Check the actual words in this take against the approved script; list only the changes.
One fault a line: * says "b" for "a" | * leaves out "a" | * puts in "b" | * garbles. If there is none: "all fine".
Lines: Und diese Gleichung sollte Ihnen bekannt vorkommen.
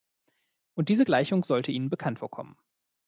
all fine